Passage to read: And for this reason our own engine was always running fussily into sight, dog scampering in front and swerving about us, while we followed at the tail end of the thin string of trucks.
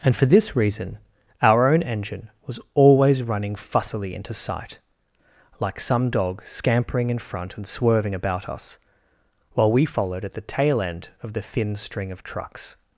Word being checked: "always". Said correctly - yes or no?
yes